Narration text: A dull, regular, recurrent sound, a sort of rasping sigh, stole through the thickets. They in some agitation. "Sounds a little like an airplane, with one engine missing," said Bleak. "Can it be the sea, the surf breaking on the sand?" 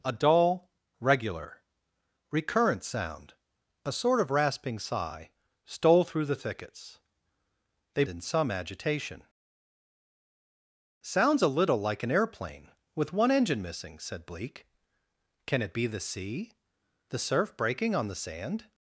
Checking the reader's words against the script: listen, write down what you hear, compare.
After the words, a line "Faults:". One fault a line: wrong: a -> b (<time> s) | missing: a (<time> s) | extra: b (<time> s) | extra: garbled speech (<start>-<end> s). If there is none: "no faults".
A dull, regular, recurrent sound, a sort of rasping sigh, stole through the thickets. They in some agitation. "Sounds a little like an airplane, with one engine missing," said Bleak. "Can it be the sea, the surf breaking on the sand?"
Faults:
no faults